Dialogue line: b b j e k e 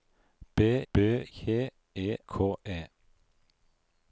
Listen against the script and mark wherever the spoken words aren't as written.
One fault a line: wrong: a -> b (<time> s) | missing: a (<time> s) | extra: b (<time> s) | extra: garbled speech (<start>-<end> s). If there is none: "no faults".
no faults